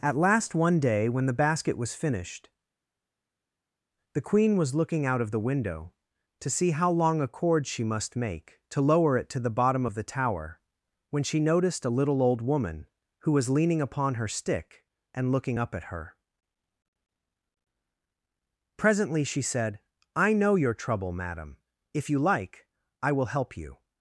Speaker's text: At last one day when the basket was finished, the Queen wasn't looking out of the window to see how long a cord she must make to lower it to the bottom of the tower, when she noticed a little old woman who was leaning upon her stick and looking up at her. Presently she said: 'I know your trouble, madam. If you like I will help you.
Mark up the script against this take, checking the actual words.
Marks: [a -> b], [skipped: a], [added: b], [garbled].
At last one day when the basket was finished, the Queen [wasn't -> was] looking out of the window to see how long a cord she must make to lower it to the bottom of the tower, when she noticed a little old woman who was leaning upon her stick and looking up at her. Presently she said: 'I know your trouble, madam. If you like I will help you.